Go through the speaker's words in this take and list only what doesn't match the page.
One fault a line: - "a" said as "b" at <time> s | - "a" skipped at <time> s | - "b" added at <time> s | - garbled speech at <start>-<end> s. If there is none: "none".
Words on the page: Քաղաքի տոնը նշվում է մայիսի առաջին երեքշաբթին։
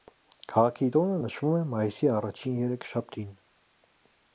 none